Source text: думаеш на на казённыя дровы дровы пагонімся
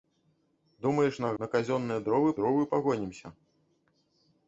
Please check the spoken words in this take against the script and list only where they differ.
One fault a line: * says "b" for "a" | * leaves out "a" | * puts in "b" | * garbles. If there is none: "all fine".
all fine